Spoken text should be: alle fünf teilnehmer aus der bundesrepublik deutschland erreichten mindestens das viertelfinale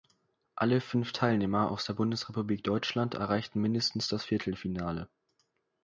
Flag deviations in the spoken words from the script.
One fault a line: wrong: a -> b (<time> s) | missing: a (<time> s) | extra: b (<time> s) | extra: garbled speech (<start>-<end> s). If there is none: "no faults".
no faults